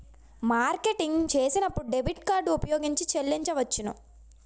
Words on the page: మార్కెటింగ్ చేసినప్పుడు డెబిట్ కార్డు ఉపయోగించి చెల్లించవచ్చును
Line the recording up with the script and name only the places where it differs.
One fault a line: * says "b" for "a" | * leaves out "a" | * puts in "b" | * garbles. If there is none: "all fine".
all fine